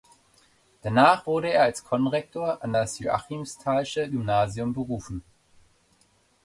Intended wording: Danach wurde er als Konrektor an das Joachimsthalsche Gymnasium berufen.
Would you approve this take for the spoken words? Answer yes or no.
yes